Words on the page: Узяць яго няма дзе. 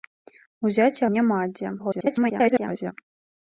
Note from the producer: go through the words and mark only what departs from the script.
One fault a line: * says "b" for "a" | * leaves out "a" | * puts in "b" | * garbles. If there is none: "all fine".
* leaves out "яго"
* garbles